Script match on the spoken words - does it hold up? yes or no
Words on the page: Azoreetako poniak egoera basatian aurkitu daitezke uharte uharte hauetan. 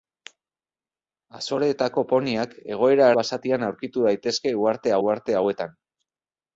yes